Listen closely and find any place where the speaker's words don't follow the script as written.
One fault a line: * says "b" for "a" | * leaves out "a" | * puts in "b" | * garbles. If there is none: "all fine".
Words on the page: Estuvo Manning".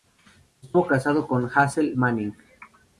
* puts in "casado con Hazel"